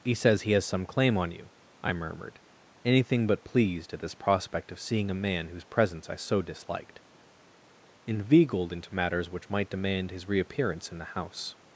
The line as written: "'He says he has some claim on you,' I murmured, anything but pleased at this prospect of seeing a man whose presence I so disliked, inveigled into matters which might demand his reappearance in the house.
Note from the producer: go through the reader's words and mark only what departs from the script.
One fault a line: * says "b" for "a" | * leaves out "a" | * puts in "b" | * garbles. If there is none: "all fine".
all fine